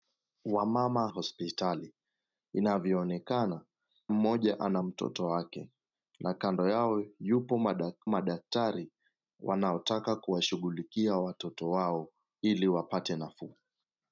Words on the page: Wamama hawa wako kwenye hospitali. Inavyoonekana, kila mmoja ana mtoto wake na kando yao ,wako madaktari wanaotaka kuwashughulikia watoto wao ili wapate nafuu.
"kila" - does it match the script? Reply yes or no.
no